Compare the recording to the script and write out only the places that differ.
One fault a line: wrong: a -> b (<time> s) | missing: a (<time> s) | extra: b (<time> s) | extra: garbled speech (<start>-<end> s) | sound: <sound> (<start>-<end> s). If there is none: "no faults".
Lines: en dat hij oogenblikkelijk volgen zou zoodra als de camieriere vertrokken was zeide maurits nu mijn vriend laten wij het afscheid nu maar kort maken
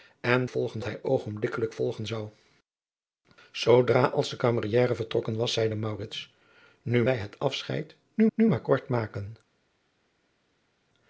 wrong: dat -> volgen (0.5 s)
missing: mijn vriend laten (7.0 s)
extra: nu (8.3 s)